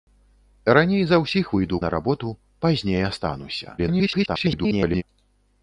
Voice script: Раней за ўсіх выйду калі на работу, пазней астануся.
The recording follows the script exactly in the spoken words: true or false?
false